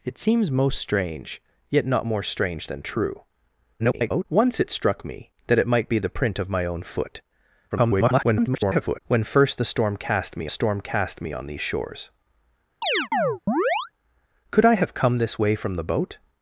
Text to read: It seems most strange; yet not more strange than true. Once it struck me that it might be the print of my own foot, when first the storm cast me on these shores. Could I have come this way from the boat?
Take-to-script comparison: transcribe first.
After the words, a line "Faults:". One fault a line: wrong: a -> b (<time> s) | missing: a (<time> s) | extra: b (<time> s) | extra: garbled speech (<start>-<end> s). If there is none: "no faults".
It seems most strange; yet not more strange than true. [garbled] Once it struck me that it might be the print of my own foot, [garbled] when first the storm cast me storm cast me on these shores. Could I have come this way from the boat?
Faults:
extra: garbled speech (3.8-4.3 s)
extra: garbled speech (7.7-9.0 s)
extra: storm cast me (10.5 s)